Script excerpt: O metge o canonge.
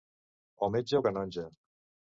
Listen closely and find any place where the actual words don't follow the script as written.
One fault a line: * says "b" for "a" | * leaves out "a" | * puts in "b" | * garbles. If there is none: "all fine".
all fine